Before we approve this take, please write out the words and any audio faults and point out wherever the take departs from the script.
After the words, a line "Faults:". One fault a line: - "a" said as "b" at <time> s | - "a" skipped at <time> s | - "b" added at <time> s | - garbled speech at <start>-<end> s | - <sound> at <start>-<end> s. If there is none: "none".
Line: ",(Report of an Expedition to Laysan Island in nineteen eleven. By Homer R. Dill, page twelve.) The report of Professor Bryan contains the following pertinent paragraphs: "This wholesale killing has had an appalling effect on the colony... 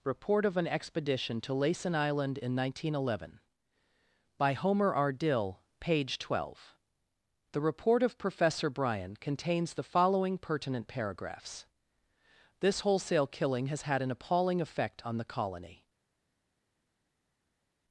",(Report of an Expedition to Laysan Island in nineteen eleven. By Homer R. Dill, page twelve.) The report of Professor Bryan contains the following pertinent paragraphs: "This wholesale killing has had an appalling effect on the colony...
Faults:
none